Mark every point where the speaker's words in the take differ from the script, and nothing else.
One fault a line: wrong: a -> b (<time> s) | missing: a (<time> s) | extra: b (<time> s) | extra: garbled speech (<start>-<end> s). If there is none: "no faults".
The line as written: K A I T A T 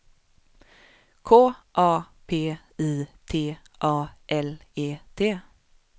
extra: P (2.2 s)
extra: L E (4.3 s)